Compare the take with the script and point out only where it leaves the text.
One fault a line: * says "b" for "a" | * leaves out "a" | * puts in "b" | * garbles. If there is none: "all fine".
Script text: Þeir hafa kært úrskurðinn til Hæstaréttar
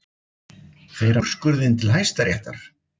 * leaves out "hafa kært"